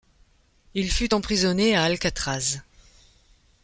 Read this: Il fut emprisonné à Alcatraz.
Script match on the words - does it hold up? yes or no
yes